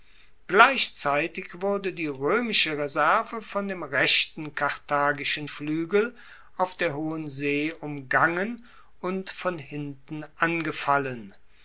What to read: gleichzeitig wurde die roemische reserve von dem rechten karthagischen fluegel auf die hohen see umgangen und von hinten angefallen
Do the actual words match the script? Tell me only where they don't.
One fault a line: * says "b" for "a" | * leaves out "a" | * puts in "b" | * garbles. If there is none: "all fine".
* says "der" for "die"